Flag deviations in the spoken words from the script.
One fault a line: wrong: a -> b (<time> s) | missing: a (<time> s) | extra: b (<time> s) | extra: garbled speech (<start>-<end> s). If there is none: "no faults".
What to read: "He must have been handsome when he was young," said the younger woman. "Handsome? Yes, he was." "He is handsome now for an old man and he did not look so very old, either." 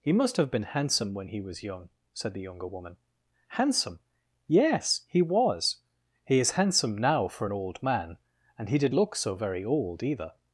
missing: not (8.9 s)